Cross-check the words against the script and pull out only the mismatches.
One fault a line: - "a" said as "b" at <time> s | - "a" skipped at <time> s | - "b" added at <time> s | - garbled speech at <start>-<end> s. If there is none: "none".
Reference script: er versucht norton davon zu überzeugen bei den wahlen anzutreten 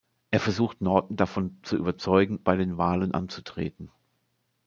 none